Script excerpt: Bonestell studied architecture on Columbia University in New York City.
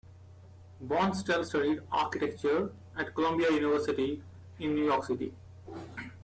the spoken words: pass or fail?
fail